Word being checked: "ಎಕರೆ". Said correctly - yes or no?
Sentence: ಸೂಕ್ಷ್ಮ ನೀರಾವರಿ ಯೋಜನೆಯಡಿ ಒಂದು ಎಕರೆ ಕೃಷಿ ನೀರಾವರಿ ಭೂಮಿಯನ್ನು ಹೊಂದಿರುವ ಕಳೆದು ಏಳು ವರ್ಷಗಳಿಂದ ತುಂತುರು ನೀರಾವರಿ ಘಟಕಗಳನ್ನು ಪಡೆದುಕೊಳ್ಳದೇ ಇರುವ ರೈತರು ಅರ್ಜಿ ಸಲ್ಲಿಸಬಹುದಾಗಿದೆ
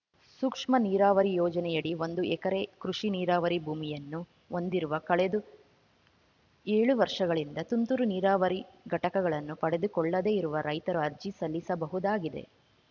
yes